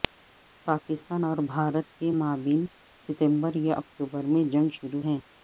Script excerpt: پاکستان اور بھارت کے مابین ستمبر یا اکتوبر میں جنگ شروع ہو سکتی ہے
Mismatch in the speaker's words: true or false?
true